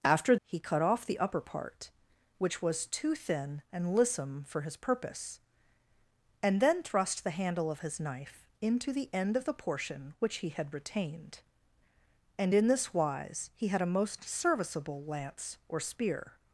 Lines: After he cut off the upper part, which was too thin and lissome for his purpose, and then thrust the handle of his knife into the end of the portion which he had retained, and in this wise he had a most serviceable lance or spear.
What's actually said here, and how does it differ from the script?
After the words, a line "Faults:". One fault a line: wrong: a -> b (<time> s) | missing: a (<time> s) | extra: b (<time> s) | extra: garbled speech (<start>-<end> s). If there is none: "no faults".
After he cut off the upper part, which was too thin and lissome for his purpose, and then thrust the handle of his knife into the end of the portion which he had retained, and in this wise he had a most serviceable lance or spear.
Faults:
no faults